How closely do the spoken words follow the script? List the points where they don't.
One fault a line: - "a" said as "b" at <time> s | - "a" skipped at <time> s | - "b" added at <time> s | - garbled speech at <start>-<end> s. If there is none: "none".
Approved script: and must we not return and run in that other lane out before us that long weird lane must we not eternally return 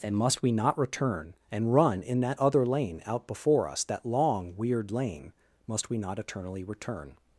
none